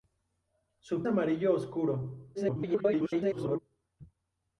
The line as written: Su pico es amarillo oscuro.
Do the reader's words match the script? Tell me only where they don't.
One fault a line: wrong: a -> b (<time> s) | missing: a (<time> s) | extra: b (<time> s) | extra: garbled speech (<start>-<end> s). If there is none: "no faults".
missing: pico es (1.1 s)
extra: garbled speech (2.3-3.6 s)